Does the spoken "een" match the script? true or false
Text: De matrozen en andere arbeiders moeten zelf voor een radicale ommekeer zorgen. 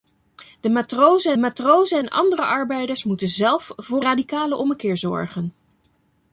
false